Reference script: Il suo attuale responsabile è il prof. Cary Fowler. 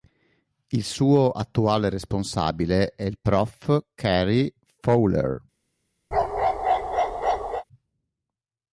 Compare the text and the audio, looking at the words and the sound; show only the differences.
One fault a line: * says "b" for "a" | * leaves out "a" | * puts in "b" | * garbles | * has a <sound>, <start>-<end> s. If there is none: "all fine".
* has a bark, 6.1-7.6 s